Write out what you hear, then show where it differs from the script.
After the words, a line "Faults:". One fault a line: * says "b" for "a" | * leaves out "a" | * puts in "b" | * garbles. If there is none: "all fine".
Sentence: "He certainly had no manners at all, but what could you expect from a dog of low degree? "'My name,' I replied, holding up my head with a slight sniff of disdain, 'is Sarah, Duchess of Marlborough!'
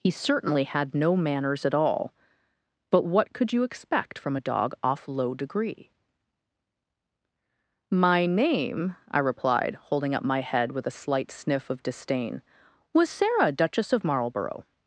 "He certainly had no manners at all, but what could you expect from a dog off low degree? "'My name,' I replied, holding up my head with a slight sniff of disdain, 'was Sarah, Duchess of Marlborough!'
Faults:
* says "off" for "of"
* says "was" for "is"